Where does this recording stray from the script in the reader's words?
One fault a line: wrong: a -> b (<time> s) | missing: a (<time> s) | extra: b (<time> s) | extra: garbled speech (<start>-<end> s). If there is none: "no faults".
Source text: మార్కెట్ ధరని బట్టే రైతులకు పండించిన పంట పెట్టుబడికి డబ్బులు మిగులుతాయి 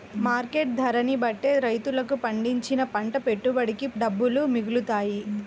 no faults